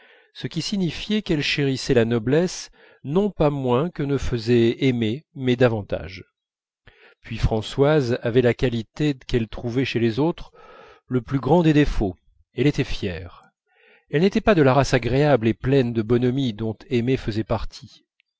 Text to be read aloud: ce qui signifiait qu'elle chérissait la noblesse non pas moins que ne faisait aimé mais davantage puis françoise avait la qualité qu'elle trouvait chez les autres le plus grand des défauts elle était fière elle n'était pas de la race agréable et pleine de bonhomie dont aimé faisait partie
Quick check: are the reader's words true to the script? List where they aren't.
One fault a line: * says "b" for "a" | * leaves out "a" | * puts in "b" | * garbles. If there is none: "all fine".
all fine